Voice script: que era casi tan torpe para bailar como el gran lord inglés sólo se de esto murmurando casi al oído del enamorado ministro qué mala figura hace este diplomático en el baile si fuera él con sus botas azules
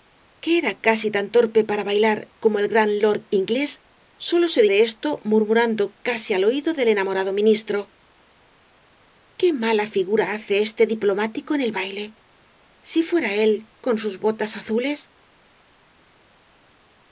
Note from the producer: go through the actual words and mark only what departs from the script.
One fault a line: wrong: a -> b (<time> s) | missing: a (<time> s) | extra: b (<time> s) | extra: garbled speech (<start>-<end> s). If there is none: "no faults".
no faults